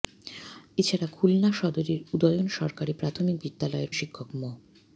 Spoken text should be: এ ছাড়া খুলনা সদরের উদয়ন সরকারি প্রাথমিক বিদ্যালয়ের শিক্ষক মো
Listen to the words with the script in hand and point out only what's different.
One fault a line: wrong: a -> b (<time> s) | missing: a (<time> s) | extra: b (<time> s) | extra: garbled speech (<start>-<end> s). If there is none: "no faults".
no faults